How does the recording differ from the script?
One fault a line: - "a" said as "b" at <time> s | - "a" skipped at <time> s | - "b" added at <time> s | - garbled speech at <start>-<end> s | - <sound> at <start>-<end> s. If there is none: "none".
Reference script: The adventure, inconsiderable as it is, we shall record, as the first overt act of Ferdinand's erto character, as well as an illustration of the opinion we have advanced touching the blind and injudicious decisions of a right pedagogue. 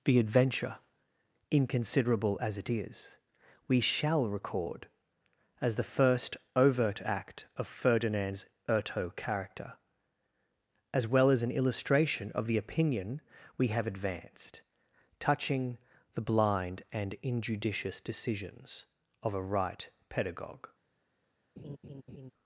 - laugh at 21.6-22.3 s